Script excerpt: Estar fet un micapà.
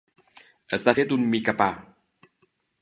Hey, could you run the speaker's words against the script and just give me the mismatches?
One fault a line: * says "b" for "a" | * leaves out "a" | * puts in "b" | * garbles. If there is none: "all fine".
all fine